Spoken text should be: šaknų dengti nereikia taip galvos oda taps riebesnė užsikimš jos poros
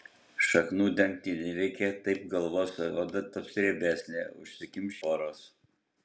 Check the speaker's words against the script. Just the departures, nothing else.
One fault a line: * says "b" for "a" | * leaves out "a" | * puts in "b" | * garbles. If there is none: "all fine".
* leaves out "jos"